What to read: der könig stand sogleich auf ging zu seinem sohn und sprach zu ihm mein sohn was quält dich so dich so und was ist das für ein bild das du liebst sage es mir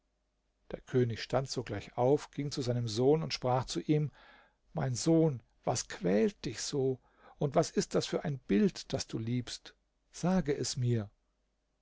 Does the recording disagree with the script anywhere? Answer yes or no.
yes